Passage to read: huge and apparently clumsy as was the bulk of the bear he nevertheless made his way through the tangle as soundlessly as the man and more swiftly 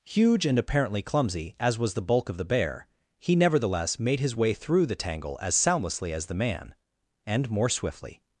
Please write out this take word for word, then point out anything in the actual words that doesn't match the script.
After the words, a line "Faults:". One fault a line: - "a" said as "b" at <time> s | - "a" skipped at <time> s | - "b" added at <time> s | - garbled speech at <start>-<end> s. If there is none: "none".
huge and apparently clumsy as was the bulk of the bear he nevertheless made his way through the tangle as soundlessly as the man and more swiftly
Faults:
none